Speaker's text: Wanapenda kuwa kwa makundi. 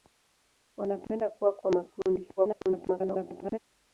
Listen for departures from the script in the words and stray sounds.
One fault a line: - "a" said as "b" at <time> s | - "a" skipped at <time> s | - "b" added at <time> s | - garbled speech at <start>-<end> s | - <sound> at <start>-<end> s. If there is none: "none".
- garbled speech at 2.4-3.6 s